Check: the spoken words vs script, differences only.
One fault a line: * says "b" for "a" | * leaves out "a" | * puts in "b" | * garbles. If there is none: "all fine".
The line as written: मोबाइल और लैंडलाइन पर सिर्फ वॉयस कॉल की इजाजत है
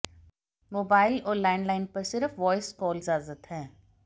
* leaves out "की"